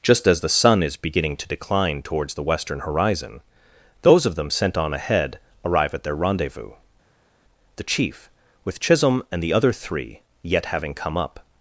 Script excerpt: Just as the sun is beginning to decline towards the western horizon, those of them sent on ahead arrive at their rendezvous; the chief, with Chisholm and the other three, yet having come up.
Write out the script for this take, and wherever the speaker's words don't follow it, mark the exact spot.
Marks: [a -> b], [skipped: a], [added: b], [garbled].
Just as the sun is beginning to decline towards the western horizon, those of them sent on ahead arrive at their rendezvous; the chief, with Chisholm and the other three, yet having come up.